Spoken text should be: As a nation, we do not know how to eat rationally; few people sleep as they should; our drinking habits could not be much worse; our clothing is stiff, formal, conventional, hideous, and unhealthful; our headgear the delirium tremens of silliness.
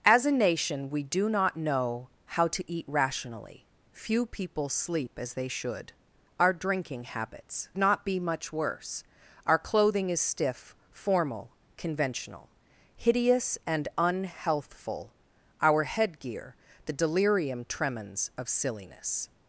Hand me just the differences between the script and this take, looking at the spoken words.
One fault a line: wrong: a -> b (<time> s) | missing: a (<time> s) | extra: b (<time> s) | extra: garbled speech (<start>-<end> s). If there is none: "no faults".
missing: could (7.7 s)